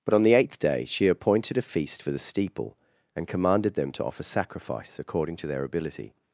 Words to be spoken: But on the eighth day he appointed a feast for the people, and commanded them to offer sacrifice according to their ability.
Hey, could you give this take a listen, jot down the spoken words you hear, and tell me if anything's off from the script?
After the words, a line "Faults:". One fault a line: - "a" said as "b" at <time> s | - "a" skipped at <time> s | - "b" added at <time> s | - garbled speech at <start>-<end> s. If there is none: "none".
But on the eighth day she appointed a feast for the steeple, and commanded them to offer sacrifice according to their ability.
Faults:
- "he" said as "she" at 0.8 s
- "people" said as "steeple" at 2.2 s